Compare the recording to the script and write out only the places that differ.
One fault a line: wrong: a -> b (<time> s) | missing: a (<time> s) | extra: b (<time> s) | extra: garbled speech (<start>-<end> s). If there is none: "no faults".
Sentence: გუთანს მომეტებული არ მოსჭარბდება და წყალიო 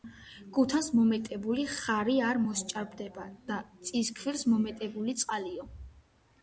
extra: ხარი (1.7 s)
extra: წისქვილს მომეტებული (3.9 s)